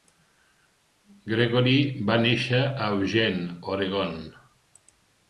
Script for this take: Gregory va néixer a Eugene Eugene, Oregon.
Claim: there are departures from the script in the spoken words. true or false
true